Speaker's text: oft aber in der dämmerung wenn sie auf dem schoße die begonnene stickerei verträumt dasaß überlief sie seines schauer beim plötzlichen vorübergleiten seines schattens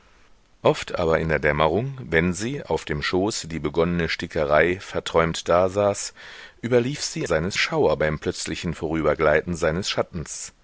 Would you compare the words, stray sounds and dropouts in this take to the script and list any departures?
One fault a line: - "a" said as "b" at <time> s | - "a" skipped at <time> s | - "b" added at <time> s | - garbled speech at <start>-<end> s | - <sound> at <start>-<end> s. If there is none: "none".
none